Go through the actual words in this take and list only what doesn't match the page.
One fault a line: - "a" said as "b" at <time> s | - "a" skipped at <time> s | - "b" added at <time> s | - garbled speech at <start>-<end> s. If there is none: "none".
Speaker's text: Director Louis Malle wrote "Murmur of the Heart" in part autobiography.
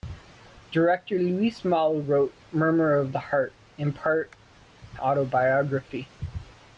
none